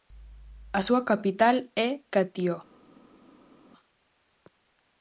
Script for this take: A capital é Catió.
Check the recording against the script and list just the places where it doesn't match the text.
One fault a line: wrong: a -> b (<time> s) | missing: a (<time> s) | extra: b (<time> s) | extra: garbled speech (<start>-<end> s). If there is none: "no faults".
extra: súa (0.9 s)